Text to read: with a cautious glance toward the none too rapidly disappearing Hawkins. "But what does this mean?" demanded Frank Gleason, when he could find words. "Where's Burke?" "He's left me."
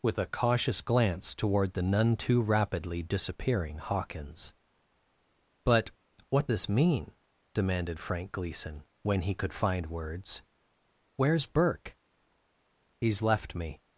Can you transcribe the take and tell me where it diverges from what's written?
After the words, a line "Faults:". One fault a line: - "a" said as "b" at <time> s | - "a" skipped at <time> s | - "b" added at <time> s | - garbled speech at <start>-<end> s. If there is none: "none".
with a cautious glance toward the none too rapidly disappearing Hawkins. "But what this mean?" demanded Frank Gleason, when he could find words. "Where's Burke?" "He's left me."
Faults:
- "does" skipped at 6.5 s